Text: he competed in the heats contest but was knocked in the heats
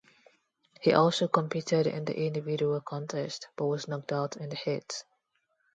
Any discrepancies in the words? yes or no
yes